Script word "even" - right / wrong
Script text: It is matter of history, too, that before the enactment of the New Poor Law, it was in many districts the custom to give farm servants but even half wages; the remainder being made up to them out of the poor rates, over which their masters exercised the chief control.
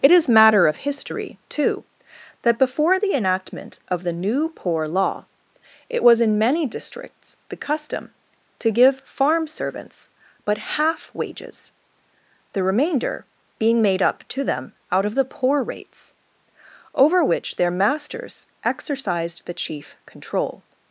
wrong